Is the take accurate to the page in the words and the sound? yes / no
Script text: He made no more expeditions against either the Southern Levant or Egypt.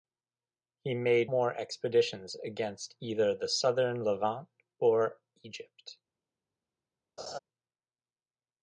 no